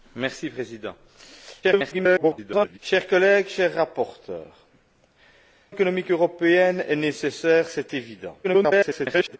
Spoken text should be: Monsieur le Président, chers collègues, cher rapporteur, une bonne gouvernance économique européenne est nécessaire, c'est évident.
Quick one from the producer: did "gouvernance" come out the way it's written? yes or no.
no